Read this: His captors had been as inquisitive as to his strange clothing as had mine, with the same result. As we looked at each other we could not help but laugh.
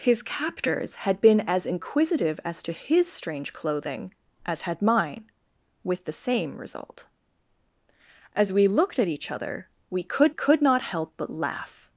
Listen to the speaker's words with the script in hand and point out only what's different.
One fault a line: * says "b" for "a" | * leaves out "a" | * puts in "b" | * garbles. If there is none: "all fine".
* puts in "could"